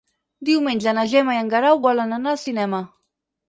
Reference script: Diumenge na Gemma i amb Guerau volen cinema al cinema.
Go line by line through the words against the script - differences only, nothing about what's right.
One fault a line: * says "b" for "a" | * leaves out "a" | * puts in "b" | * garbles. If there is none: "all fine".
* says "en" for "amb"
* says "anar" for "cinema"